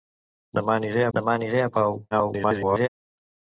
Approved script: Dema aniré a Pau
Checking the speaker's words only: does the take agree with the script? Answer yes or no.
no